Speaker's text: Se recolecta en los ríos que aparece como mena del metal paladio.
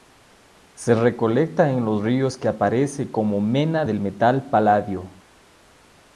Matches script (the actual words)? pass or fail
pass